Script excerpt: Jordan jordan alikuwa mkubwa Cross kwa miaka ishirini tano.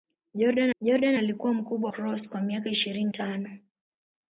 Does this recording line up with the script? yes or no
yes